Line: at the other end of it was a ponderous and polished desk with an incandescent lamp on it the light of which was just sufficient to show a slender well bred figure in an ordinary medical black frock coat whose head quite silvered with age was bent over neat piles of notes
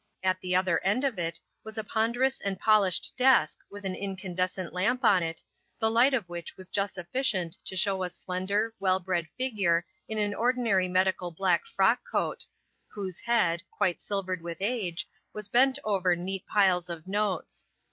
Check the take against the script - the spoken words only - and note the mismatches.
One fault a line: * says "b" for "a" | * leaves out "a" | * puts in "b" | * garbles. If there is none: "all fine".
all fine